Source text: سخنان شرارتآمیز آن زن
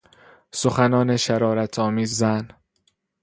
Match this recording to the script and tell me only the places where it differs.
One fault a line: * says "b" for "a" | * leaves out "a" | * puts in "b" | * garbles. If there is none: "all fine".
* leaves out "آن"